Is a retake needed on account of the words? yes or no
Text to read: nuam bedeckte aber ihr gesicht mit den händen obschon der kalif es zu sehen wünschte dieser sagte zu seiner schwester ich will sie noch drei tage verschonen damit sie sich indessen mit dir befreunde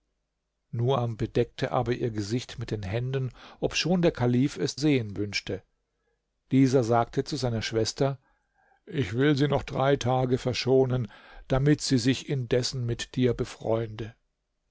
yes